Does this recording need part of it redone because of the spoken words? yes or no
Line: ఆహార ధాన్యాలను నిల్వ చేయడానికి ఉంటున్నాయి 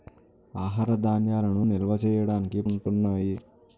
no